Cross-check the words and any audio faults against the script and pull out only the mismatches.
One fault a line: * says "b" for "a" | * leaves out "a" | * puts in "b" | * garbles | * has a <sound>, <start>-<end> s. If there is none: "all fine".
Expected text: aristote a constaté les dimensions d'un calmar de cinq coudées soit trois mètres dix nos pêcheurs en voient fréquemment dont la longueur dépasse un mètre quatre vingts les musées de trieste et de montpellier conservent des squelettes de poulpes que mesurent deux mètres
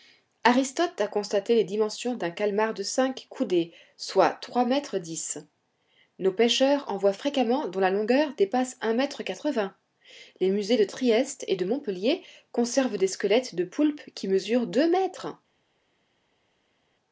* says "qui" for "que"